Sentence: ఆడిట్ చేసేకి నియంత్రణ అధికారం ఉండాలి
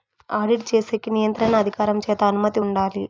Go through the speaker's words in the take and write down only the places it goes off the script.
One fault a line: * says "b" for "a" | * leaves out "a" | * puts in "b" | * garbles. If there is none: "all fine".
* puts in "చేత అనుమతి"